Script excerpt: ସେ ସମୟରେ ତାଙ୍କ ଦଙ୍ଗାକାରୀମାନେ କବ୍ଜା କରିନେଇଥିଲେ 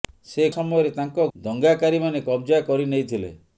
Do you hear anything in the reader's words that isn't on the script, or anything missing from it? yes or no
no